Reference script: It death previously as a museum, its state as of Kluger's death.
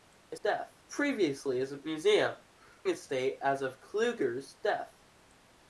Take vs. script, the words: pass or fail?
pass